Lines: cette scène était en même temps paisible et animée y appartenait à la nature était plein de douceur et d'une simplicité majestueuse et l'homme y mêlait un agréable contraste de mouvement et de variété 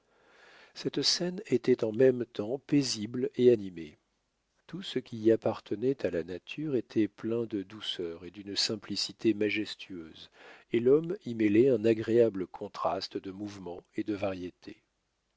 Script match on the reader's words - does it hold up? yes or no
no